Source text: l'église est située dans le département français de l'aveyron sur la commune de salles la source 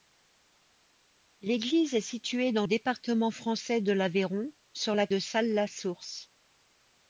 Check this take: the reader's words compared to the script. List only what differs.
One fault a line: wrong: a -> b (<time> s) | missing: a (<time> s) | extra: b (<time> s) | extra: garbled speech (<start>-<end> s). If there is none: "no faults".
missing: le (2.6 s)
missing: commune (5.1 s)